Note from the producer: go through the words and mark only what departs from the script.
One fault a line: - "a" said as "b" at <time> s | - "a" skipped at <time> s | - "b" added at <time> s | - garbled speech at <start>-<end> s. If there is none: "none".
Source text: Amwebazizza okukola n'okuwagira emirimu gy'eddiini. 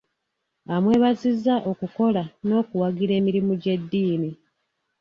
none